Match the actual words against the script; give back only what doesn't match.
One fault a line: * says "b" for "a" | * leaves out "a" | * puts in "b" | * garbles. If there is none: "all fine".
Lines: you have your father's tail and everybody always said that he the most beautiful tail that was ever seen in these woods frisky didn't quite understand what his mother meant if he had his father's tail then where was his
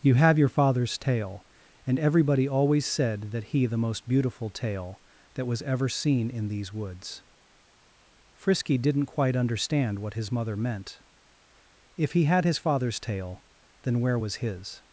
all fine